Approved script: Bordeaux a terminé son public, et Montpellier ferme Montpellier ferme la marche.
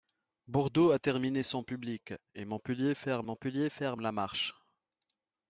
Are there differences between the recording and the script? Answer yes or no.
no